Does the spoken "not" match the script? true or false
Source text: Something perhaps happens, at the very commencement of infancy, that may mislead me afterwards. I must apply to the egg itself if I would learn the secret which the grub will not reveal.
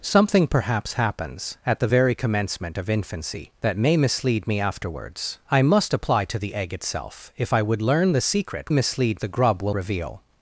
false